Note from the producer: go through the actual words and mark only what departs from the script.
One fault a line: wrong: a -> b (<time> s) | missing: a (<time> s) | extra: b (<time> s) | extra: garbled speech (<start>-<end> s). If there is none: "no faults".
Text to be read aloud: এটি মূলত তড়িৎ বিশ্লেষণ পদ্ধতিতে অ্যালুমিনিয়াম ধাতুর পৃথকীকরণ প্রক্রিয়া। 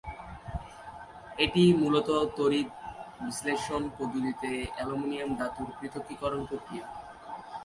no faults